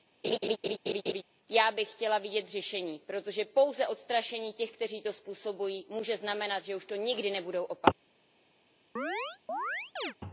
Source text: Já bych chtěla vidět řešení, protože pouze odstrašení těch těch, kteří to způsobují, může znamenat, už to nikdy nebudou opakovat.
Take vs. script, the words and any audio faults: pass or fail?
fail